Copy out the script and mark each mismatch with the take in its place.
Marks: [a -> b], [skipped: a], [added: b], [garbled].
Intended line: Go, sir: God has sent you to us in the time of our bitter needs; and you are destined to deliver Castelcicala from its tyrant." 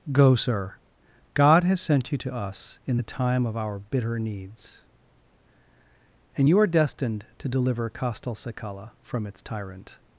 Go, sir: God has sent you to us in the time of our bitter needs; and you are destined to deliver Castelcicala from its tyrant."